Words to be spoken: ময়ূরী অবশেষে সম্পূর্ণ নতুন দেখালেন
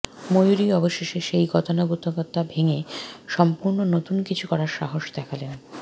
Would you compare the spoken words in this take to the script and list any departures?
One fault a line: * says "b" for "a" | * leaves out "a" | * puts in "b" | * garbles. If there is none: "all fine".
* puts in "সেই গতানুগতিকতা ভেঙে"
* puts in "কিছু করার সাহস"